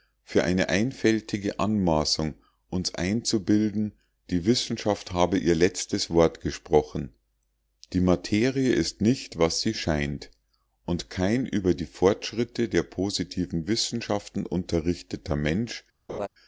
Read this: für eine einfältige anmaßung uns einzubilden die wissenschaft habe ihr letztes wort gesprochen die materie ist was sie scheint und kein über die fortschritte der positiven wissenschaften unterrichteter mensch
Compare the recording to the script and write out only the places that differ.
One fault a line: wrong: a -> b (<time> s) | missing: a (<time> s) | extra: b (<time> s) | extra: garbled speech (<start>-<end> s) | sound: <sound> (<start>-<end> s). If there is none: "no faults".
extra: nicht (9.0 s)
sound: laugh (16.1-16.3 s)